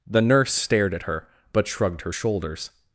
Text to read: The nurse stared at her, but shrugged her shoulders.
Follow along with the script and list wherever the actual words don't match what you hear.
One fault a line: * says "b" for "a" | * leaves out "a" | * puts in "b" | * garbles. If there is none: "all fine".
all fine